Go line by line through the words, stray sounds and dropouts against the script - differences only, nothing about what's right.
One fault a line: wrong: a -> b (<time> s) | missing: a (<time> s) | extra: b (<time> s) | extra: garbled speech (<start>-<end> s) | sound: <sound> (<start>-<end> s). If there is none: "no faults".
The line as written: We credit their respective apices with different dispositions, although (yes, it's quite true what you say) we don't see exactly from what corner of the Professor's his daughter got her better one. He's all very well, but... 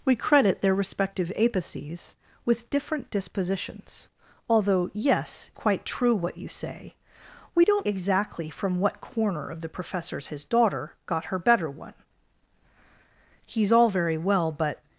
missing: it's (5.5 s)
missing: see (7.9 s)